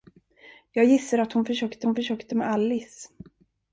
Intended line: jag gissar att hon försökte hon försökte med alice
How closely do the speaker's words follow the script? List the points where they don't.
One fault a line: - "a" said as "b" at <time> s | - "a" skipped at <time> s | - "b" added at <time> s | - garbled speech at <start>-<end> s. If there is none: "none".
none